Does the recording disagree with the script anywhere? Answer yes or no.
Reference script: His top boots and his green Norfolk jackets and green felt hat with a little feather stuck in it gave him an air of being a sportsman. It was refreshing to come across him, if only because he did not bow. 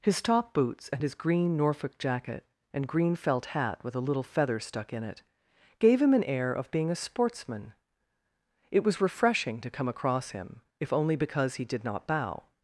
yes